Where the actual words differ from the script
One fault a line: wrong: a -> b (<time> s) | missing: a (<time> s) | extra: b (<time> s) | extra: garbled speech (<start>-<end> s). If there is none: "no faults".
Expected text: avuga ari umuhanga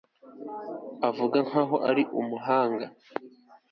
extra: nkaho (1.4 s)